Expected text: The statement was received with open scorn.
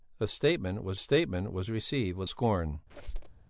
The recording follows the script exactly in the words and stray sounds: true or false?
false